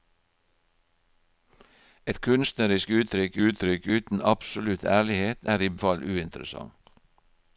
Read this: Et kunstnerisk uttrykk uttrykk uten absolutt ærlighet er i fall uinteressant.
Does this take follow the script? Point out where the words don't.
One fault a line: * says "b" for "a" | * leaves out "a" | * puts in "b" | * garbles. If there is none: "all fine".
all fine